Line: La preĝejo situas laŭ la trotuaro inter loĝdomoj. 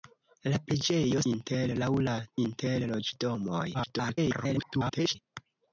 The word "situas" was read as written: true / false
false